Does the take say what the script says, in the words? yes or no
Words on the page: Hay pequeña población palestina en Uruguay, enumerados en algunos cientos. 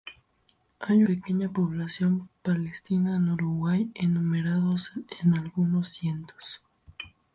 yes